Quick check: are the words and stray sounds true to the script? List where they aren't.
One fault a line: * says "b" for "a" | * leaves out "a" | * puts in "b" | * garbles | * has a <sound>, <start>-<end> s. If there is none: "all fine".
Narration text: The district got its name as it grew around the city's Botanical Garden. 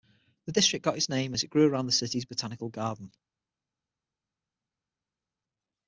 all fine